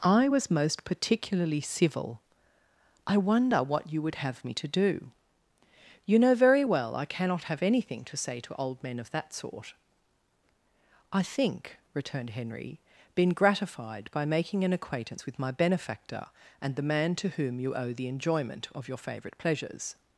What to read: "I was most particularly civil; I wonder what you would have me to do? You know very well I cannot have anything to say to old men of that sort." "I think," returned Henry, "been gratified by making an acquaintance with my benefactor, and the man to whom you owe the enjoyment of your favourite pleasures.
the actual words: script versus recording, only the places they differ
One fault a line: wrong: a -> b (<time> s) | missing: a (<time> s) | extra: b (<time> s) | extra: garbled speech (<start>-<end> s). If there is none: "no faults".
no faults